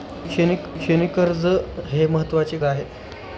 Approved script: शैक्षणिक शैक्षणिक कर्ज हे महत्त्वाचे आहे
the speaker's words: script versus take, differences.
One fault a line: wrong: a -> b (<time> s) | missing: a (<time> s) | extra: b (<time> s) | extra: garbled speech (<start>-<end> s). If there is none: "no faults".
no faults